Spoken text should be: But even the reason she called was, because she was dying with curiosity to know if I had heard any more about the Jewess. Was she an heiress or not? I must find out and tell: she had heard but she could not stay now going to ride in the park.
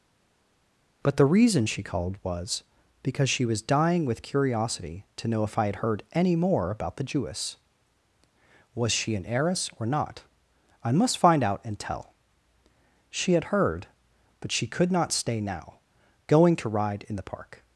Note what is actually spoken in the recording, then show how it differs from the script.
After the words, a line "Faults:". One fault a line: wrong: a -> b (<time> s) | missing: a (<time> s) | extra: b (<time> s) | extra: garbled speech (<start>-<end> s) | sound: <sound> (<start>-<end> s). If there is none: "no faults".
But the reason she called was, because she was dying with curiosity to know if I had heard any more about the Jewess. Was she an heiress or not? I must find out and tell: she had heard but she could not stay now going to ride in the park.
Faults:
missing: even (1.2 s)